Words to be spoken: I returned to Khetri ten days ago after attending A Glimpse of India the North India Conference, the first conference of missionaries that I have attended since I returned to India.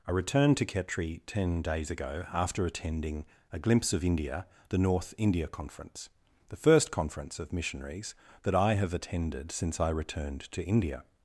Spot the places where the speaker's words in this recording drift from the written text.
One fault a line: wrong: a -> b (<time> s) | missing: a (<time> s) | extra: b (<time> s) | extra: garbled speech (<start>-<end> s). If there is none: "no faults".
no faults